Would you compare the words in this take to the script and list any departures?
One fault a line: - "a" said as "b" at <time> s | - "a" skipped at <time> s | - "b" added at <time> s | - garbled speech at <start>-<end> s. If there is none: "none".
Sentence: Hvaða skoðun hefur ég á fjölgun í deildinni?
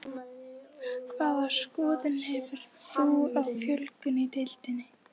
- "ég" said as "þú" at 2.9 s